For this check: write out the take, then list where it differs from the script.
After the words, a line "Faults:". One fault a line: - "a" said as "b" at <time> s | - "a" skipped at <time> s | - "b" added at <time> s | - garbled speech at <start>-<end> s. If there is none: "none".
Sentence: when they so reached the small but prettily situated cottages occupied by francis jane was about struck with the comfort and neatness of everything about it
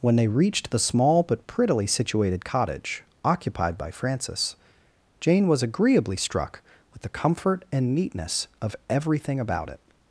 when they reached the small but prettily situated cottage occupied by francis jane was agreeably struck with the comfort and neatness of everything about it
Faults:
- "so" skipped at 0.3 s
- "cottages" said as "cottage" at 2.4 s
- "about" said as "agreeably" at 5.6 s